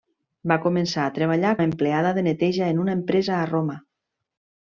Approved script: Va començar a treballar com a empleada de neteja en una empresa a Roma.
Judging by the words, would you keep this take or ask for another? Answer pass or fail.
fail